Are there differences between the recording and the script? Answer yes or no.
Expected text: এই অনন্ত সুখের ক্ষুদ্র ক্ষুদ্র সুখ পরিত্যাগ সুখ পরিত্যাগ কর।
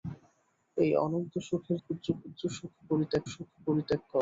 no